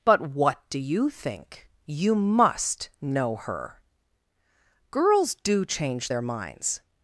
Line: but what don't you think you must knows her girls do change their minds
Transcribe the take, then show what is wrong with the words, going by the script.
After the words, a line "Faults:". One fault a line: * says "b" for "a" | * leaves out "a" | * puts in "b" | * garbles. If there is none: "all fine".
but what do you think you must know her girls do change their minds
Faults:
* says "do" for "don't"
* says "know" for "knows"